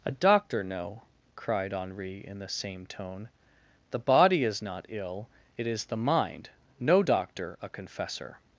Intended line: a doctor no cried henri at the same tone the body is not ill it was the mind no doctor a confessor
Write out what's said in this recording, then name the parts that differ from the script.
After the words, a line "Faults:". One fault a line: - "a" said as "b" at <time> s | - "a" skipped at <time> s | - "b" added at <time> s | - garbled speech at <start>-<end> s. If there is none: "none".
a doctor no cried henri in the same tone the body is not ill it is the mind no doctor a confessor
Faults:
- "at" said as "in" at 2.3 s
- "was" said as "is" at 5.7 s